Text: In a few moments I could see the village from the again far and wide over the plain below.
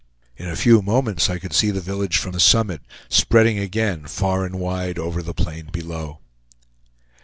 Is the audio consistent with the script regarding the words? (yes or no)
no